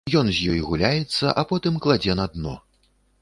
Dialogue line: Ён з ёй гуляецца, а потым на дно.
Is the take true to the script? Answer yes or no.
no